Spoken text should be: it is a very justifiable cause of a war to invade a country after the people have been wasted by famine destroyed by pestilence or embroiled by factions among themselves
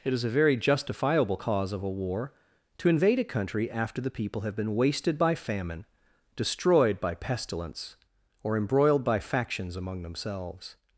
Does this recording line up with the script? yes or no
yes